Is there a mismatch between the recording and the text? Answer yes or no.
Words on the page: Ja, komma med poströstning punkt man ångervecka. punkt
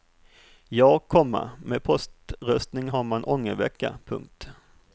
yes